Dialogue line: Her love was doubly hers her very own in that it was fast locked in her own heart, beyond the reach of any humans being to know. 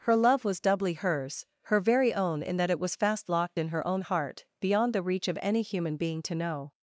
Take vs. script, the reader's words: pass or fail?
fail